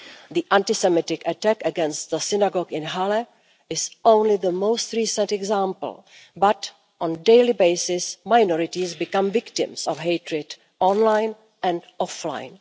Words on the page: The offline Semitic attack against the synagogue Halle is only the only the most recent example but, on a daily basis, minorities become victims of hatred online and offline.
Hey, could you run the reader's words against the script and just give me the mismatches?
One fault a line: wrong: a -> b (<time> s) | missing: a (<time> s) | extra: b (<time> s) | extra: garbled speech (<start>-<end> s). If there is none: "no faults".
wrong: offline -> anti (0.5 s)
extra: in (2.7 s)
missing: only the (4.5 s)